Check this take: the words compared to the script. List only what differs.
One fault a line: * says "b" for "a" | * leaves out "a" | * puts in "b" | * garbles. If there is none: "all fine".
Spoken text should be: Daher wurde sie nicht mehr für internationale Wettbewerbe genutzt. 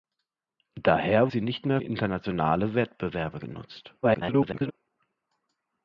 * leaves out "wurde"
* leaves out "für"
* garbles